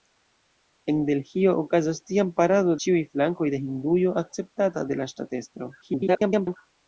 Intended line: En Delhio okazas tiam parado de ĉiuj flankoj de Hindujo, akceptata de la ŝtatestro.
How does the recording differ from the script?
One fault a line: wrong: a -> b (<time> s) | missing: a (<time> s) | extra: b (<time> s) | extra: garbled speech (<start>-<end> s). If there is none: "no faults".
missing: de (2.8 s)
extra: garbled speech (5.8-6.6 s)